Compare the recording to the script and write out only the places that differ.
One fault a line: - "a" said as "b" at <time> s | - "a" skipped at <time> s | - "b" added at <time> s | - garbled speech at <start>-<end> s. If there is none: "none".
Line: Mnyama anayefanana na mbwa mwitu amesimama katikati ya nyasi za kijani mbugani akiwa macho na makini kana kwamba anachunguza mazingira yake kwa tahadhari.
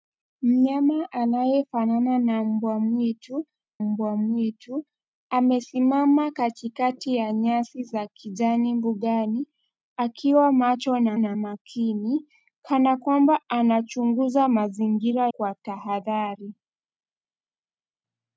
- "mbwa mwitu" added at 3.8 s
- "na" added at 11.2 s
- "yake" skipped at 15.3 s